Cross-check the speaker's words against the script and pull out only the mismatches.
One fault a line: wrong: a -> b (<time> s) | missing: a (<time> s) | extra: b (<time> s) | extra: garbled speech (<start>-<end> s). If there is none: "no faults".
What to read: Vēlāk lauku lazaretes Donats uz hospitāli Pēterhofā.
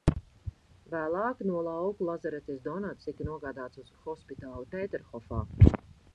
extra: no (1.5 s)
extra: tika nogādāts (3.1 s)